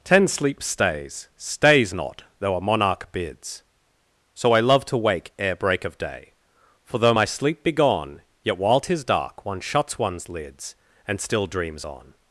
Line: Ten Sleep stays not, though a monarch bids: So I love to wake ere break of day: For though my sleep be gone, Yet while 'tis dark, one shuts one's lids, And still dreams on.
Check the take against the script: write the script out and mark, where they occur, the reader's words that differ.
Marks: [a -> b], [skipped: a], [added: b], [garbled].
Ten Sleep stays [added: stays] not, though a monarch bids: So I love to wake ere break of day: For though my sleep be gone, Yet while 'tis dark, one shuts one's lids, And still dreams on.